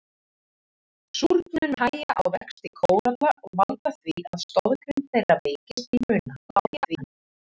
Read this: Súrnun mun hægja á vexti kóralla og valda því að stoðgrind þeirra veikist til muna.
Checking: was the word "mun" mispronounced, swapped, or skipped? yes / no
yes